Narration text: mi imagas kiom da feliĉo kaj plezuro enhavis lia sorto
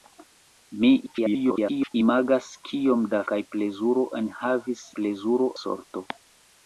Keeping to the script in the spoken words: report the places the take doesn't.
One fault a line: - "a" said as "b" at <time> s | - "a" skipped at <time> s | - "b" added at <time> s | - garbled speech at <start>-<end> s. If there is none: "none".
- garbled speech at 1.1-1.9 s
- "feliĉo" skipped at 3.2 s
- "lia" said as "plezuro" at 5.0 s